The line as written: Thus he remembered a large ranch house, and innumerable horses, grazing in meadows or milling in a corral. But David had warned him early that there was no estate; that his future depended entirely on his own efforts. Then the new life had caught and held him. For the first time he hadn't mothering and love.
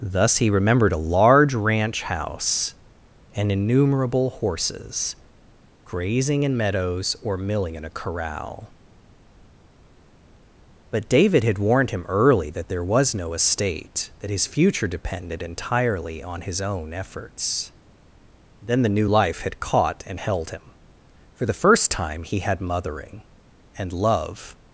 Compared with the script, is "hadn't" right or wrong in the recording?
wrong